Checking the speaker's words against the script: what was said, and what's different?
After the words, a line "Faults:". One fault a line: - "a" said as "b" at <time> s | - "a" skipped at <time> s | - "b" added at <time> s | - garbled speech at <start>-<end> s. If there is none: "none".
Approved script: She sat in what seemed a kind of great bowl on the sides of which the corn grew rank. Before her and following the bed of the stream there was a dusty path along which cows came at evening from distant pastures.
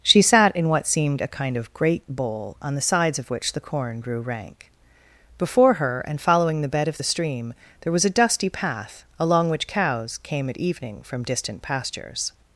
She sat in what seemed a kind of great bowl on the sides of which the corn grew rank. Before her and following the bed of the stream there was a dusty path along which cows came at evening from distant pastures.
Faults:
none